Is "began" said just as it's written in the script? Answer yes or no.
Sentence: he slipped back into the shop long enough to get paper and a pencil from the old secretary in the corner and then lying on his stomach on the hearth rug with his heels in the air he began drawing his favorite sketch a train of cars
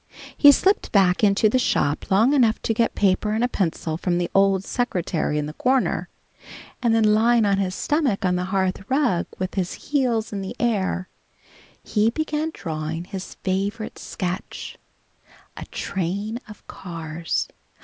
yes